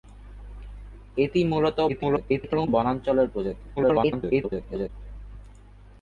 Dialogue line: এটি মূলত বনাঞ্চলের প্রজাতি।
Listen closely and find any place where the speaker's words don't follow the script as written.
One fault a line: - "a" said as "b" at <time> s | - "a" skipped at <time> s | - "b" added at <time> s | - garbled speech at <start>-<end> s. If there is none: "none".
- garbled speech at 1.9-2.7 s
- garbled speech at 3.8-4.9 s